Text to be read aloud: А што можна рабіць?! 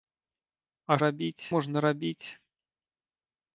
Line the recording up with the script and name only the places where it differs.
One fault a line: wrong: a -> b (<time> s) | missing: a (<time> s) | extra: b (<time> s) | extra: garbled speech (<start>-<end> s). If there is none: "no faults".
wrong: што -> рабіць (1.1 s)